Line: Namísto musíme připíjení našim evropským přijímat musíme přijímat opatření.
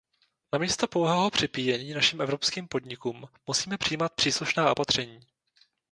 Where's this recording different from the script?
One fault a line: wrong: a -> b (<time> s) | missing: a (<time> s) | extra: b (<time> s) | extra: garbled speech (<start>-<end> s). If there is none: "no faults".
wrong: musíme -> pouhého (0.9 s)
wrong: přijímat -> podnikům (2.7 s)
extra: příslušná (4.2 s)